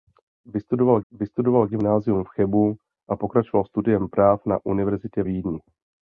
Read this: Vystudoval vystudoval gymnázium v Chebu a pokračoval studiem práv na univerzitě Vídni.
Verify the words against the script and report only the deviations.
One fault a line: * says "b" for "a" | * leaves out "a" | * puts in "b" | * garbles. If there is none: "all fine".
all fine